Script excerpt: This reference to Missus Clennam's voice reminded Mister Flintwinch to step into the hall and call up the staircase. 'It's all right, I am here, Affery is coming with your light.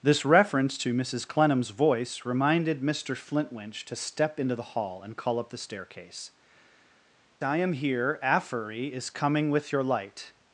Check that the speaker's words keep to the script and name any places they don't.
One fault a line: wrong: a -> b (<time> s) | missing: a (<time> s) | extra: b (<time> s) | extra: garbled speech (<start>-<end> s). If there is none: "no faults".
missing: It's all right (6.3 s)